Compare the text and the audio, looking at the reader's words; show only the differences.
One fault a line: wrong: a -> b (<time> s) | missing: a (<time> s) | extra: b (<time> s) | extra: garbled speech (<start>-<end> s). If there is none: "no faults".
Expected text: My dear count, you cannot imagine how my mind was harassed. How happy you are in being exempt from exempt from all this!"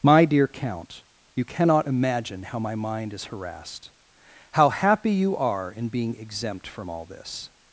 wrong: was -> is (3.1 s)
missing: exempt from (6.9 s)